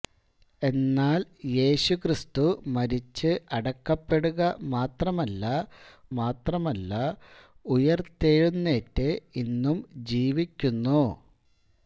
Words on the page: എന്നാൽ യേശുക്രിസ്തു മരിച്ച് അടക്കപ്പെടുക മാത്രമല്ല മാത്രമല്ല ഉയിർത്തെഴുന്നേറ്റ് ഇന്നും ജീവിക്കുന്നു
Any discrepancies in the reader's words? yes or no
no